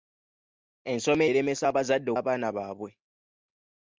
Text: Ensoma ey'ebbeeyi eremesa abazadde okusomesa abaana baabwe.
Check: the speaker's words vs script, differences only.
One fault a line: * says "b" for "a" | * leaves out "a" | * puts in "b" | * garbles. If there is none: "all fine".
* leaves out "ey'ebbeeyi"
* leaves out "okusomesa"